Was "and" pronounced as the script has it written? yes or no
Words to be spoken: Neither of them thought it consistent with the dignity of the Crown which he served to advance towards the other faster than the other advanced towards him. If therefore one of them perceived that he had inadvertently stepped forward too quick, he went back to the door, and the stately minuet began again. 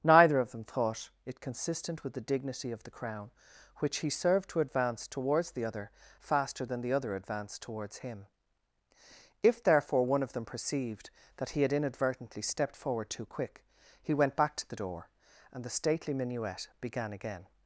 yes